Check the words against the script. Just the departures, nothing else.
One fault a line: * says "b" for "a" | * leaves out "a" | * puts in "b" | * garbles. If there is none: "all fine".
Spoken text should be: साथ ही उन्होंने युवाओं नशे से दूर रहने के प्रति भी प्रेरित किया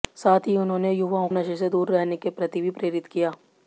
all fine